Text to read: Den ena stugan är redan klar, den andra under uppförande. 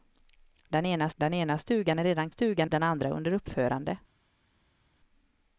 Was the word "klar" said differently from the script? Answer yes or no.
yes